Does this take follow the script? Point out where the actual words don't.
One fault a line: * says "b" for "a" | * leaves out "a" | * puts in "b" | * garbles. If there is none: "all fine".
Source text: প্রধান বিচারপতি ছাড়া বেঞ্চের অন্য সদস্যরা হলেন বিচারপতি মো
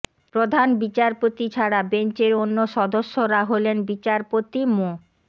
all fine